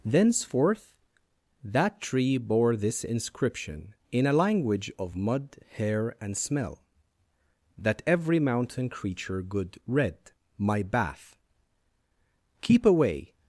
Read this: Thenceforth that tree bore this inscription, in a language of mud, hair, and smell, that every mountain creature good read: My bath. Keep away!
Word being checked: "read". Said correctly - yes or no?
yes